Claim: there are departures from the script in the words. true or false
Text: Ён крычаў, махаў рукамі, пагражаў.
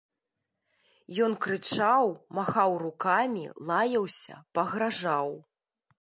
true